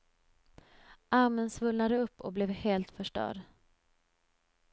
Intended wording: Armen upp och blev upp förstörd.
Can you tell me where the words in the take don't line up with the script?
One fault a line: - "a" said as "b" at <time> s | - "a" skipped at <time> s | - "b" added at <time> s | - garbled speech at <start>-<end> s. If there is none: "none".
- "svullnade" added at 1.5 s
- "upp" said as "helt" at 2.5 s